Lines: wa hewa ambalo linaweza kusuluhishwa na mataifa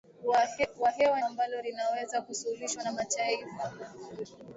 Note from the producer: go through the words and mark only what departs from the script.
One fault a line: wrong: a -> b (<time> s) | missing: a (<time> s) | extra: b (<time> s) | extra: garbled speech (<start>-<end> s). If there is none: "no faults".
no faults